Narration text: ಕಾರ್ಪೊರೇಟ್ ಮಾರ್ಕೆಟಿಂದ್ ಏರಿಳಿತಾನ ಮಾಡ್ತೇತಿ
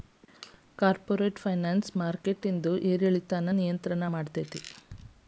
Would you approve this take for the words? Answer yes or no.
no